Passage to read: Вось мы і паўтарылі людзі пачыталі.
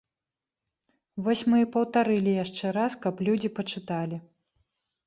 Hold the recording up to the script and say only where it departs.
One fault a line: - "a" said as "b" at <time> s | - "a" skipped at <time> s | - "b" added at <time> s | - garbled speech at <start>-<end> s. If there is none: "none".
- "яшчэ раз каб" added at 2.4 s